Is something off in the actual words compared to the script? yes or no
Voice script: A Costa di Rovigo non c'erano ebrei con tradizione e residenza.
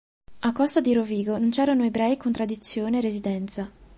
no